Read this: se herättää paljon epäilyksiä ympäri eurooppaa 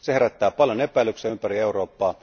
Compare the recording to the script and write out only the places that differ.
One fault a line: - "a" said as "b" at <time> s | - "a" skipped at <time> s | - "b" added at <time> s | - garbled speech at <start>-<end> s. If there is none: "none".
none